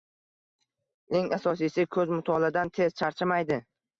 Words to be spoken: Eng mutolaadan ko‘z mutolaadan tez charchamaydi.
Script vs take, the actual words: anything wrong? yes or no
yes